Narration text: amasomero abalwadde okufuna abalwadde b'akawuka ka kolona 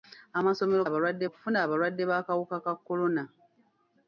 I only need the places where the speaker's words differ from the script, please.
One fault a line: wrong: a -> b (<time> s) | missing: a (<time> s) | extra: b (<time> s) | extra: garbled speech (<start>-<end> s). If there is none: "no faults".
no faults